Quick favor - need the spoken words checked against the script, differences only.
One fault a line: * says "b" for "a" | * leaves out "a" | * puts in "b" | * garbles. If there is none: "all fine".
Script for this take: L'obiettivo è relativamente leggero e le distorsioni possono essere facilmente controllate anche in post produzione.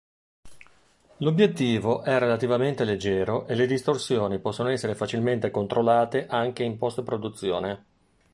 all fine